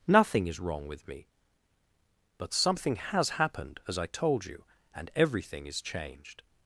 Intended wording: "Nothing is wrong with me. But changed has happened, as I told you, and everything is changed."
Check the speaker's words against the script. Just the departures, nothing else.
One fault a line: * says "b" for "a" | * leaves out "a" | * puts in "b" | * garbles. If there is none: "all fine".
* says "something" for "changed"